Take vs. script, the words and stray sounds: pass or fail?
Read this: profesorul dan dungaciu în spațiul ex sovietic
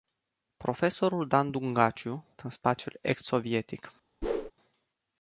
fail